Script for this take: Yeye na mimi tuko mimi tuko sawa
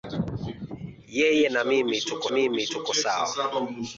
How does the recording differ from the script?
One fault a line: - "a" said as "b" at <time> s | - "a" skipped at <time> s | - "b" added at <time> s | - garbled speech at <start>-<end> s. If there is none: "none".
none